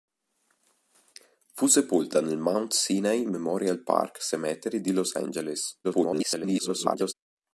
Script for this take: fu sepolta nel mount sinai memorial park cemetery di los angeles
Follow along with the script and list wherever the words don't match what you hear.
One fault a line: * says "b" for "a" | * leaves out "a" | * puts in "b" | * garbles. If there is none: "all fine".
* garbles